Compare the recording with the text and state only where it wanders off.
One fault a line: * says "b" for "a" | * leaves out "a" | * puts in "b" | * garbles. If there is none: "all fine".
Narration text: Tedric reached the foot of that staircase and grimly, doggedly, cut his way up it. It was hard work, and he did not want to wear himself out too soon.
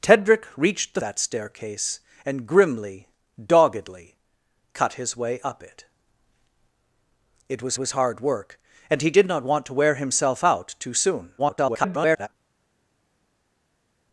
* leaves out "foot of"
* puts in "was"
* garbles